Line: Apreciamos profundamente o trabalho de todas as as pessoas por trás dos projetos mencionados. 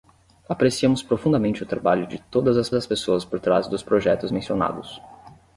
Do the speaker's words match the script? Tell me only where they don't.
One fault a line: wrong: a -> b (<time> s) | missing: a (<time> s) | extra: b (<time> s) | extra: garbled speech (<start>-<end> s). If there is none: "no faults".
no faults